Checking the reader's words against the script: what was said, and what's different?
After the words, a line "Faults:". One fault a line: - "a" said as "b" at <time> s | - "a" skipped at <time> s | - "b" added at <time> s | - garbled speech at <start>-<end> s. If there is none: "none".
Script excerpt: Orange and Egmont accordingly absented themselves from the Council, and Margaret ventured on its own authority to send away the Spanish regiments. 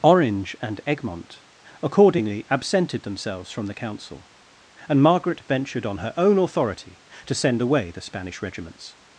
Orange and Egmont accordingly absented themselves from the Council, and Margaret ventured on her own authority to send away the Spanish regiments.
Faults:
- "its" said as "her" at 6.0 s